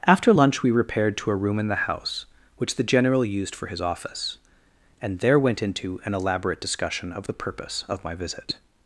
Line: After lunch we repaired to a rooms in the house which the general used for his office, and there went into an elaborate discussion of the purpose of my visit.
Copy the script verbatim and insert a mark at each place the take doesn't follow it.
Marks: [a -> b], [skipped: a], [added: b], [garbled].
After lunch we repaired to a [rooms -> room] in the house which the general used for his office, and there went into an elaborate discussion of the purpose of my visit.